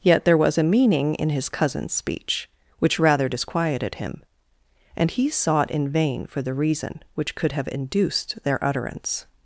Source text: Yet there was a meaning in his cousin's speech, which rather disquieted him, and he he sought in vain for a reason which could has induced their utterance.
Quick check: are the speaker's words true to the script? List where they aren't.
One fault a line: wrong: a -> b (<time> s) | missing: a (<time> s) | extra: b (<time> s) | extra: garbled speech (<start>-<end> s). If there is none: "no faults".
missing: he (5.3 s)
wrong: a -> the (6.4 s)
wrong: has -> have (7.5 s)